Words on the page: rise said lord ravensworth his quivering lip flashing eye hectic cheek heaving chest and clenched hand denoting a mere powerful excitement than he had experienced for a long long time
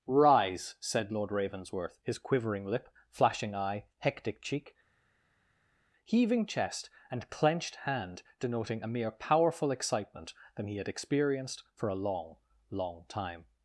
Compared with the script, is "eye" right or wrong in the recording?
right